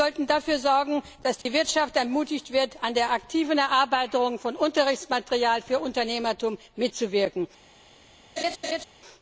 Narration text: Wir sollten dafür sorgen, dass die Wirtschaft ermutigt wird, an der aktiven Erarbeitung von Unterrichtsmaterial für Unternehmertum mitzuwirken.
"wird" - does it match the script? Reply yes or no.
yes